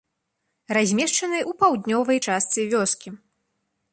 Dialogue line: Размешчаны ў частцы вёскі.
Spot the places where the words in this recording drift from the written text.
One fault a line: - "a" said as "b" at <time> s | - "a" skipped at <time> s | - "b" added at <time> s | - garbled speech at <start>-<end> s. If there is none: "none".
- "паўднёвай" added at 1.6 s